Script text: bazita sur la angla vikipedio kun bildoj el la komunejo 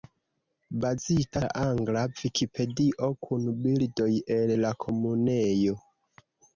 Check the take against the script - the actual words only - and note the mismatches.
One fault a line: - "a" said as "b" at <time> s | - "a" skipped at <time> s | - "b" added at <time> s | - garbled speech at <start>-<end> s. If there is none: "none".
- "sur" skipped at 1.4 s